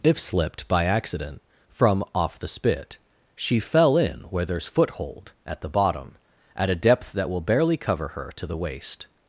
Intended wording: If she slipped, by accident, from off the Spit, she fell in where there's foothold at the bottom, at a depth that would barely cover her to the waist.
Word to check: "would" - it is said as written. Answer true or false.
false